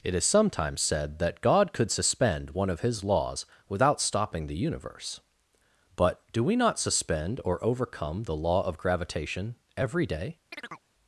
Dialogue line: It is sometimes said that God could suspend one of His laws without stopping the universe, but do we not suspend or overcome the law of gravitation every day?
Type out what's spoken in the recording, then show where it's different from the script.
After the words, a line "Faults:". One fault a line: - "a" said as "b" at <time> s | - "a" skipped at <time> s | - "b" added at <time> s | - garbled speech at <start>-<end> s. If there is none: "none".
It is sometimes said that God could suspend one of His laws without stopping the universe, but do we not suspend or overcome the law of gravitation every day?
Faults:
none